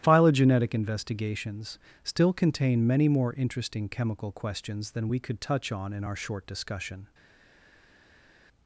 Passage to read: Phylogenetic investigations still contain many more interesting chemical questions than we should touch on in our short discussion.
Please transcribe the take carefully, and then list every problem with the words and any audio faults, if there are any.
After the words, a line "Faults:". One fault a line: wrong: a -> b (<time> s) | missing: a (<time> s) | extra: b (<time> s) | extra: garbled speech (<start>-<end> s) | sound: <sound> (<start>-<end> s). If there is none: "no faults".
Phylogenetic investigations still contain many more interesting chemical questions than we could touch on in our short discussion.
Faults:
wrong: should -> could (5.2 s)